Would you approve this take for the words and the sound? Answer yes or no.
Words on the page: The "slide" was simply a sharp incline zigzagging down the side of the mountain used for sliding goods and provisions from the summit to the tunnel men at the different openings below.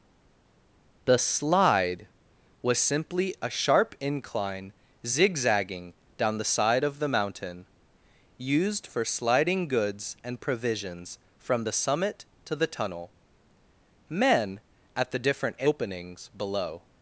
yes